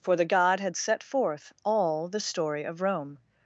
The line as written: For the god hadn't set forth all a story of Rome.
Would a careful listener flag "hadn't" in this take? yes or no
yes